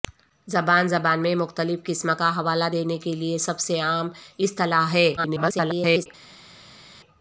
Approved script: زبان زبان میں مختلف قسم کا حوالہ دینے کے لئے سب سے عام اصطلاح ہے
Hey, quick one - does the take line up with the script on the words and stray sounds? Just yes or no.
no